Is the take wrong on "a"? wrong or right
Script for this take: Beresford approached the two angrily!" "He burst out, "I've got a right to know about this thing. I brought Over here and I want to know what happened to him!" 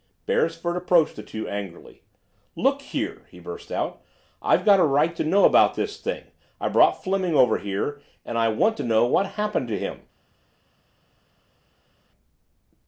right